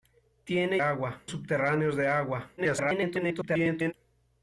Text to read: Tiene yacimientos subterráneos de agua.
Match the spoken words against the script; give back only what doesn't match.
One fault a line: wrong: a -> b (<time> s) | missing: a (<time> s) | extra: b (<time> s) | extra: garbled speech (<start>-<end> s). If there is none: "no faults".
wrong: yacimientos -> agua (0.8 s)
extra: garbled speech (2.6-3.9 s)